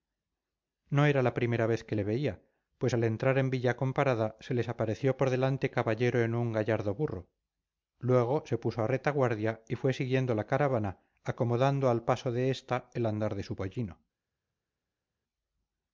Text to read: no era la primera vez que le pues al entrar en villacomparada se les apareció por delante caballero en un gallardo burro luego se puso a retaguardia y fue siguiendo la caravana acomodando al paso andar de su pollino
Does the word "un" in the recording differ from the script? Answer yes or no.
no